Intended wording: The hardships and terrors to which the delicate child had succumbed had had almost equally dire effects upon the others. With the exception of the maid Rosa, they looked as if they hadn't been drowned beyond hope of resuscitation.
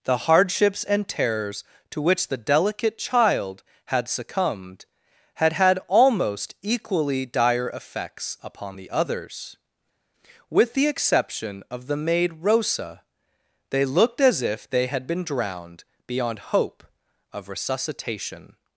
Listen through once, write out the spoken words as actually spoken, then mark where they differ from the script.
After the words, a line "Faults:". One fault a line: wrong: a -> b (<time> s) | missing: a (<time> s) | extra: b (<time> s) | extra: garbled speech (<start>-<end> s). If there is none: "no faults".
The hardships and terrors to which the delicate child had succumbed had had almost equally dire effects upon the others. With the exception of the maid Rosa, they looked as if they had been drowned beyond hope of resuscitation.
Faults:
wrong: hadn't -> had (14.9 s)